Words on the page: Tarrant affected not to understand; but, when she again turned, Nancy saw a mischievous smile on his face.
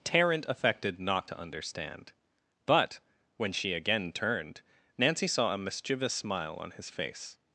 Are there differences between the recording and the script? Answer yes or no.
no